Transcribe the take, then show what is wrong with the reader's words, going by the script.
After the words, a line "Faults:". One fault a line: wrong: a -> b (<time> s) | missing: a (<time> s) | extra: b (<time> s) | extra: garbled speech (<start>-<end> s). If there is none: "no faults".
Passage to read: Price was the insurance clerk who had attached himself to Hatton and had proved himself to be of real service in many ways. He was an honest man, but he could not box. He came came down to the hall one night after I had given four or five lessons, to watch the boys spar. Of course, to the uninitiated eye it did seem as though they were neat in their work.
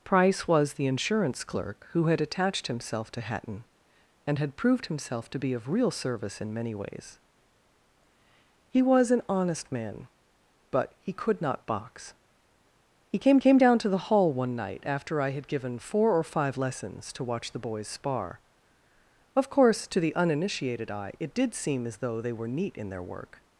Price was the insurance clerk who had attached himself to Hatton and had proved himself to be of real service in many ways. He was an honest man, but he could not box. He came came down to the hall one night after I had given four or five lessons, to watch the boys spar. Of course, to the uninitiated eye it did seem as though they were neat in their work.
Faults:
no faults